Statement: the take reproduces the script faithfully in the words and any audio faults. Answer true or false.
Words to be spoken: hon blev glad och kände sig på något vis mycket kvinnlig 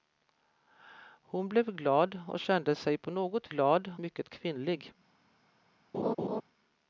false